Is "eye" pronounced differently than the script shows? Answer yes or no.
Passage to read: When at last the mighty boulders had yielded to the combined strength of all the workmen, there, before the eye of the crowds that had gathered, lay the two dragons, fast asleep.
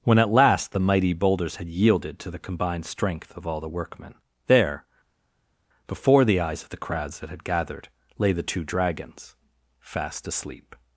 yes